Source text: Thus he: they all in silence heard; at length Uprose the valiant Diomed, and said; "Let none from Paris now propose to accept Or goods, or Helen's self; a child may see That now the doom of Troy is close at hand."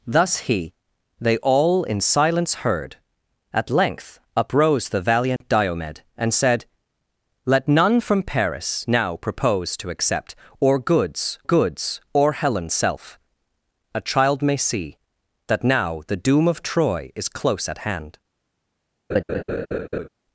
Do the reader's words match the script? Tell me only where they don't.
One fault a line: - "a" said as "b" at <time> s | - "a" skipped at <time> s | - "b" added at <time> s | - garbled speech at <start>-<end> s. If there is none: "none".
- "goods" added at 11.4 s